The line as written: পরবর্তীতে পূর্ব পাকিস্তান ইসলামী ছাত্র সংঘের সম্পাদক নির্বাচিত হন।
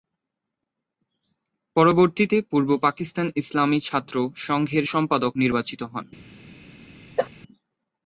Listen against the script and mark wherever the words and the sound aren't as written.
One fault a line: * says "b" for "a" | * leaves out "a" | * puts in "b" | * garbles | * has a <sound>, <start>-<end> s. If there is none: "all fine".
* has a cough, 7.2-7.3 s